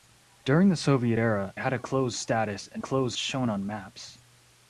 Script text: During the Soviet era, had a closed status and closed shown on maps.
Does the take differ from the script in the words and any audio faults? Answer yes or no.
no